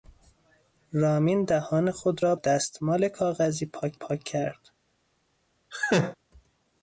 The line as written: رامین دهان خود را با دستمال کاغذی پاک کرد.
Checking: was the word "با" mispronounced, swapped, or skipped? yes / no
yes